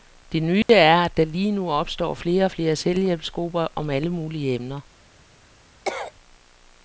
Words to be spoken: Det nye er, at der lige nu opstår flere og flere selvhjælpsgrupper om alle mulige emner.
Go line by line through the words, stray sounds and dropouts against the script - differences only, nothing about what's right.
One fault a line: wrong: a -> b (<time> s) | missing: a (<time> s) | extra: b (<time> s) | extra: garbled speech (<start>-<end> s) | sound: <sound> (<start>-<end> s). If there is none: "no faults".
sound: dropout (0.6-0.7 s)
sound: cough (5.9-6.1 s)